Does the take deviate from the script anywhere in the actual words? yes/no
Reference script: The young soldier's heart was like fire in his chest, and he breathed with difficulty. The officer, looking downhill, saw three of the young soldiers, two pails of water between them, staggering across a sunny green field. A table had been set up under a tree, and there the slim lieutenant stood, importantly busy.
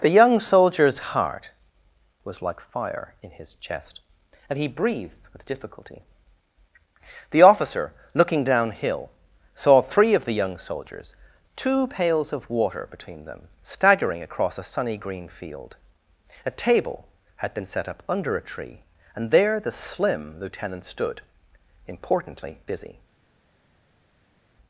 no